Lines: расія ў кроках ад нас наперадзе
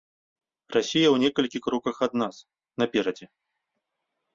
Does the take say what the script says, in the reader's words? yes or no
no